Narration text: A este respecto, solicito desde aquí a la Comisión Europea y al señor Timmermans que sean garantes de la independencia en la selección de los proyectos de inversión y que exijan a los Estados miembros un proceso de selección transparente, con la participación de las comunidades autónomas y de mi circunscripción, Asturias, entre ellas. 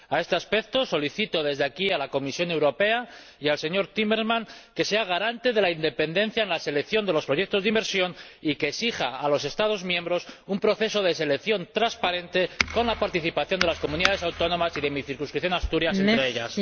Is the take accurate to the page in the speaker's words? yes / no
yes